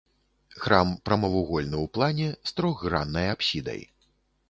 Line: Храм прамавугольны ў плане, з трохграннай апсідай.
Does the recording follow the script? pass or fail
pass